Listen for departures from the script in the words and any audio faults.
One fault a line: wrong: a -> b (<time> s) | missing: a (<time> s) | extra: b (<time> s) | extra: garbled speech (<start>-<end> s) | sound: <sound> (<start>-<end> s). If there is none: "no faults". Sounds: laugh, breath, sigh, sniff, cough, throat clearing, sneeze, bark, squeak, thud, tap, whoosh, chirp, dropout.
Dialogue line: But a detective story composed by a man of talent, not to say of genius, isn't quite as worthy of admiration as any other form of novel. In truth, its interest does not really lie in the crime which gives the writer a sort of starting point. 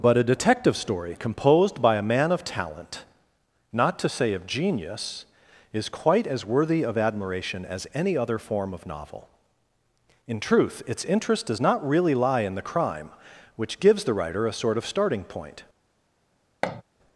wrong: isn't -> is (5.7 s)
sound: thud (16.6-16.8 s)